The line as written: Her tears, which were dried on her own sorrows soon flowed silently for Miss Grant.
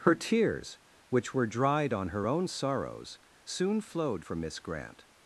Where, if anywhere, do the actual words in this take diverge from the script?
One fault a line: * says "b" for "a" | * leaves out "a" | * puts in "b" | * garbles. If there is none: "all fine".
* leaves out "silently"